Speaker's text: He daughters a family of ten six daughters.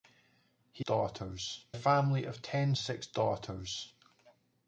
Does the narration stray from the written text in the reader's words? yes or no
no